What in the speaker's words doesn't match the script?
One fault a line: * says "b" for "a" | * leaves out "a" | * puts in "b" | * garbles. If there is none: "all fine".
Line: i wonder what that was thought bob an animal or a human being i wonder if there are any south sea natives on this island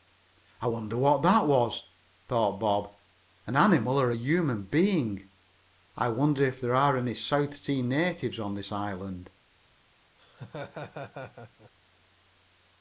all fine